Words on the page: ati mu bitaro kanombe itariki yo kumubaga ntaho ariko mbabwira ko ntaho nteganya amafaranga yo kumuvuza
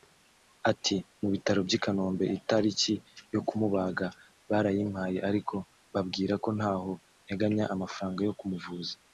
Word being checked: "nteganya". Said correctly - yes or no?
yes